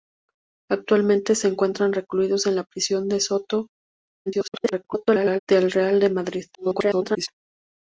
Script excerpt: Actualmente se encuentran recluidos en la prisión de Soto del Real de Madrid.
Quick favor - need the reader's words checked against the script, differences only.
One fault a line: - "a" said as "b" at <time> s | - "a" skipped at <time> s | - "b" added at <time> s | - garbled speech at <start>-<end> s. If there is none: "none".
- garbled speech at 4.3-5.4 s
- garbled speech at 6.5-7.3 s